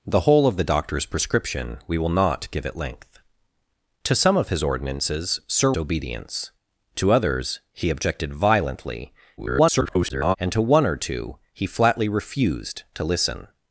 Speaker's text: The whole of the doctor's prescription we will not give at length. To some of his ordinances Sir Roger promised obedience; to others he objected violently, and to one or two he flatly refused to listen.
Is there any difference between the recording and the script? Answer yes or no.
yes